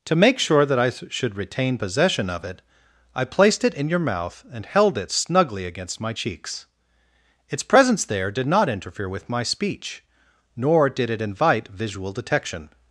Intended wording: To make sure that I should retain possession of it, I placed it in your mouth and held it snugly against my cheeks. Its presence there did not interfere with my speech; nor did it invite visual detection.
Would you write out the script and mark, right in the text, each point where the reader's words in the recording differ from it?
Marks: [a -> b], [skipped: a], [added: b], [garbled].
To make sure that I should retain possession of it, I placed it in your mouth and held it snugly against my cheeks. Its presence there did not interfere with my speech; nor did it invite visual detection.